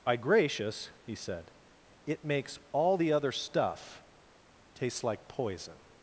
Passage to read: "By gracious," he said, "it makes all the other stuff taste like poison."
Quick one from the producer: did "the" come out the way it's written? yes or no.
yes